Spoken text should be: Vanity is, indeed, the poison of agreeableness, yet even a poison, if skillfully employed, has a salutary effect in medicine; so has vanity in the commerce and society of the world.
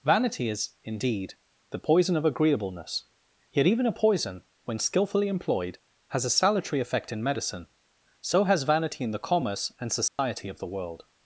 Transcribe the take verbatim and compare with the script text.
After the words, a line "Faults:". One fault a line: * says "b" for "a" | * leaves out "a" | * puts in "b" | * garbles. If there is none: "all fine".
Vanity is, indeed, the poison of agreeableness, yet even a poison, when skillfully employed, has a salutary effect in medicine; so has vanity in the commerce and society of the world.
Faults:
* says "when" for "if"